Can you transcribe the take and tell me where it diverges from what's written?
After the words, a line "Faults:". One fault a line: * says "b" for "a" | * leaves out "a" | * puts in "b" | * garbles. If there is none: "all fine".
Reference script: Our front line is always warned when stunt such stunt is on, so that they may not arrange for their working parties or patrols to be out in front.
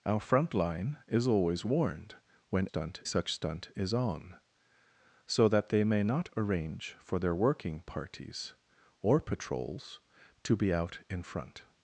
Our front line is always warned when stunt such stunt is on, so that they may not arrange for their working parties or patrols to be out in front.
Faults:
all fine